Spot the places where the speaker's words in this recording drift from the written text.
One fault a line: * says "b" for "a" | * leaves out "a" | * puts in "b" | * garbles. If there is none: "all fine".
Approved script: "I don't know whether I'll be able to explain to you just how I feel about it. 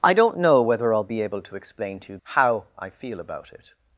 * leaves out "just"